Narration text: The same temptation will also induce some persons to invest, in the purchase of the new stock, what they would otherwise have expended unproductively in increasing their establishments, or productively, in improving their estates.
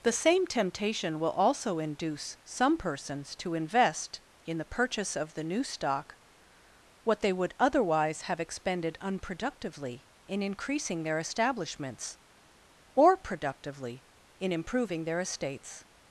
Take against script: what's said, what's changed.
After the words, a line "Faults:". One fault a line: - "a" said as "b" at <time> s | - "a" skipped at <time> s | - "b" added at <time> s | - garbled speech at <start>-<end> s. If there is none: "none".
The same temptation will also induce some persons to invest, in the purchase of the new stock, what they would otherwise have expended unproductively in increasing their establishments, or productively, in improving their estates.
Faults:
none